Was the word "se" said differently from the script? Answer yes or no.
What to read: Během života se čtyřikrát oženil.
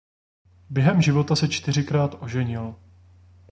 no